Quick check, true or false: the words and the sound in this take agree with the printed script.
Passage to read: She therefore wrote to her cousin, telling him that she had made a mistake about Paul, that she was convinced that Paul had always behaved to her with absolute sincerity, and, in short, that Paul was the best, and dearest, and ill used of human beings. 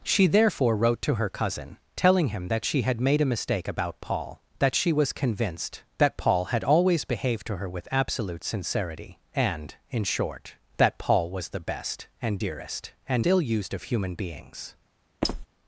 false